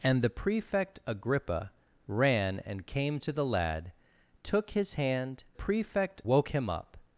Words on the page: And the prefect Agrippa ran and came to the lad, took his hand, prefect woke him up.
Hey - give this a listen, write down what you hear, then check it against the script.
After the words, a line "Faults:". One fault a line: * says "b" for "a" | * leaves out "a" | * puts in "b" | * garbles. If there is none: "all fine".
And the prefect Agrippa ran and came to the lad, took his hand, prefect woke him up.
Faults:
all fine